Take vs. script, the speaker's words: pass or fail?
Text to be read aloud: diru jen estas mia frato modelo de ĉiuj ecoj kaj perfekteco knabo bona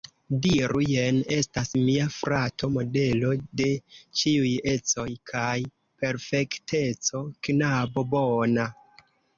pass